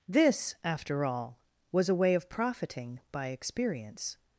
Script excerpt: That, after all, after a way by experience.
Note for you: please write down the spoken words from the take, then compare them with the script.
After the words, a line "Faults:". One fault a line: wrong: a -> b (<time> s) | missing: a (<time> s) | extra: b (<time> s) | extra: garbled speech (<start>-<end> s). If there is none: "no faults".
This, after all, was a way of profiting by experience.
Faults:
wrong: That -> This (0.1 s)
wrong: after -> was (1.7 s)
extra: of profiting (2.1 s)